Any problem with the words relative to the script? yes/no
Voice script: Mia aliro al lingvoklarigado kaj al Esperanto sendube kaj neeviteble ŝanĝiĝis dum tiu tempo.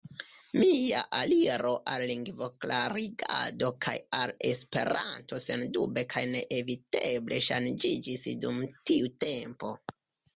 no